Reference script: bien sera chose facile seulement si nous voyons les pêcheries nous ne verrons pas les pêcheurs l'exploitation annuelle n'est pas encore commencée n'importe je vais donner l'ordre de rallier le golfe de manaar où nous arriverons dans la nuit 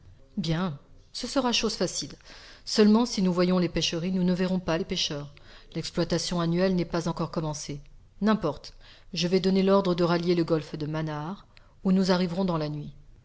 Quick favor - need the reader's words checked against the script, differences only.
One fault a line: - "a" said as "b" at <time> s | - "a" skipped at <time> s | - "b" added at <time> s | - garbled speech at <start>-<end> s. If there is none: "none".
- "ce" added at 1.1 s